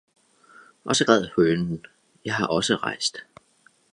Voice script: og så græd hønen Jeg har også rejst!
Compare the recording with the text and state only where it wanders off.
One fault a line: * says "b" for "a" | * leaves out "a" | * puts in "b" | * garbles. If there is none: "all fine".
all fine